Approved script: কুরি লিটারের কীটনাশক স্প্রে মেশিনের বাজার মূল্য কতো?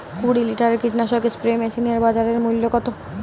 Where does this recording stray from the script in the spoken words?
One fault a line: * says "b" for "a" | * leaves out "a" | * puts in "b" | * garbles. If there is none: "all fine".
all fine